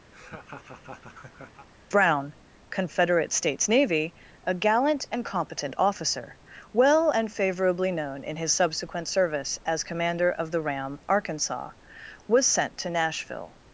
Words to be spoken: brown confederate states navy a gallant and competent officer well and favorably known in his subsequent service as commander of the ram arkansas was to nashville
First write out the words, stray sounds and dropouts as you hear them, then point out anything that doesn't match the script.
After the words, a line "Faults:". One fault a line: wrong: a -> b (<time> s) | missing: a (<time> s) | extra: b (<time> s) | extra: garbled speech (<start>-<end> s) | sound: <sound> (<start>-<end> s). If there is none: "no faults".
brown confederate states navy a gallant and competent officer well and favorably known in his subsequent service as commander of the ram arkansas was sent to nashville
Faults:
sound: laugh (0.1-1.7 s)
extra: sent (12.4 s)